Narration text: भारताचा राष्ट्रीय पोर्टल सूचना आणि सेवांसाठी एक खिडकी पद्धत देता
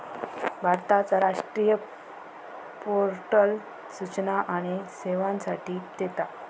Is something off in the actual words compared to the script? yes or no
yes